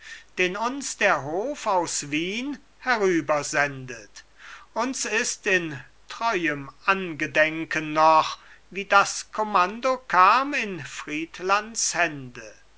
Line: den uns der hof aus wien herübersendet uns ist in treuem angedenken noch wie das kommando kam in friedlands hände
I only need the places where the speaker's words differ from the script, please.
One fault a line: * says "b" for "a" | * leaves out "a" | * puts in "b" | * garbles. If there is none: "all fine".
all fine